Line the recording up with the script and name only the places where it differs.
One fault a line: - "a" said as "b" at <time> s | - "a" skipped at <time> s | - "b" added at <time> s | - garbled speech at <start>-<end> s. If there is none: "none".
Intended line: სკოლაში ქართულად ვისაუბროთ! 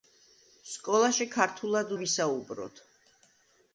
none